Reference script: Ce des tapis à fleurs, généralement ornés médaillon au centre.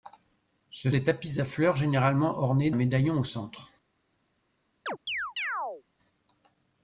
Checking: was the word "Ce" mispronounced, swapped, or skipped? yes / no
no